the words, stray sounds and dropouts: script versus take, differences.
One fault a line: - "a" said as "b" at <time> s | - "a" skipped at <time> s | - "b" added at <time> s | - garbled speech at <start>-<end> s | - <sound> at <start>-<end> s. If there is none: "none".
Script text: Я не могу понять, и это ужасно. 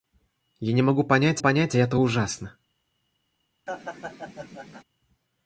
- "понять" added at 1.4 s
- laugh at 3.7-4.8 s